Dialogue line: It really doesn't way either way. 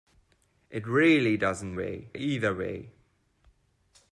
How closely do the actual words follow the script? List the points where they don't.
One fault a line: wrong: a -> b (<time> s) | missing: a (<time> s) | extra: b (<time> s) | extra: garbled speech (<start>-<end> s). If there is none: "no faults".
no faults